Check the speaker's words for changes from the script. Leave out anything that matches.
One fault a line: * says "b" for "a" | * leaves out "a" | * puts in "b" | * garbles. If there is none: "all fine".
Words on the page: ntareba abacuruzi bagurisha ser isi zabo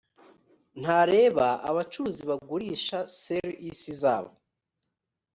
all fine